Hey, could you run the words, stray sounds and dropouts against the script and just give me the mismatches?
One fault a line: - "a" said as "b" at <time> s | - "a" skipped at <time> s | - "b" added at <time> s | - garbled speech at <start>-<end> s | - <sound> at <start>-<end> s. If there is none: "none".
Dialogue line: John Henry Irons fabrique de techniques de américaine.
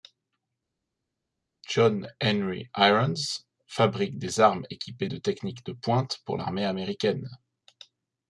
- "des armes équipées" added at 4.2 s
- "pointe pour l'armée" added at 5.7 s